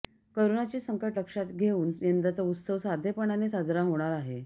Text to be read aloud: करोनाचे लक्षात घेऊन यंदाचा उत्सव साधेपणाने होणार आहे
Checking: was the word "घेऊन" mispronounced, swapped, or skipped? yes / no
no